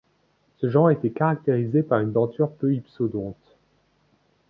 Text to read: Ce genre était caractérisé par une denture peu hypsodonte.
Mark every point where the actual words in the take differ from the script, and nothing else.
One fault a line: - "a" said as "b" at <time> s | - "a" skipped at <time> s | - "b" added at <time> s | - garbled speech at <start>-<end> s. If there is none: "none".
none